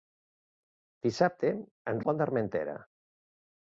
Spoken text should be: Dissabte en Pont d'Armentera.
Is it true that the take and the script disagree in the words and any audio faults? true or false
false